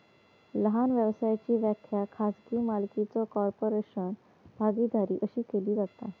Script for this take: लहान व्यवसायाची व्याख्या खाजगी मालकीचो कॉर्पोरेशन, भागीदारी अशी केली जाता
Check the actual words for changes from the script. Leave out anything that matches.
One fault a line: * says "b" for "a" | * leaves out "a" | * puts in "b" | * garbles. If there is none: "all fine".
all fine